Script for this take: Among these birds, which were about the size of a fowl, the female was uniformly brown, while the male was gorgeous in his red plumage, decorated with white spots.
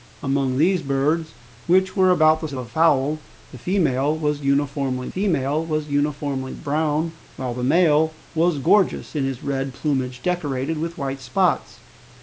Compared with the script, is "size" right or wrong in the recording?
wrong